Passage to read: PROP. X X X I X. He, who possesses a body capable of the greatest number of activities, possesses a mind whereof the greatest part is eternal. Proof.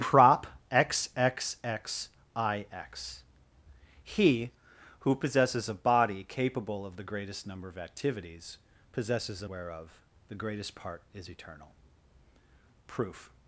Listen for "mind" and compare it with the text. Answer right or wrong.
wrong